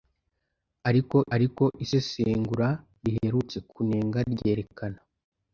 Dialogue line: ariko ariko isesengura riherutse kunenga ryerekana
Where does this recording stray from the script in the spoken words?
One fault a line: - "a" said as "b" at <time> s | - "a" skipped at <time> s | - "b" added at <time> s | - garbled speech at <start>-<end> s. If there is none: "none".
none